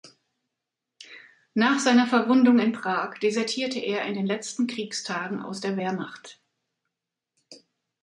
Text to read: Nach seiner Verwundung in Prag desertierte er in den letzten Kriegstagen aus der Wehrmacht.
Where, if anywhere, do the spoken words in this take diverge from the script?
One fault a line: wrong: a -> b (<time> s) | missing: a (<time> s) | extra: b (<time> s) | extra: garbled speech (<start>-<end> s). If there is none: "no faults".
no faults